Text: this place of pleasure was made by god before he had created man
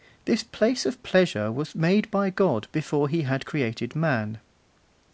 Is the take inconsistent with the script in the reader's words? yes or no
no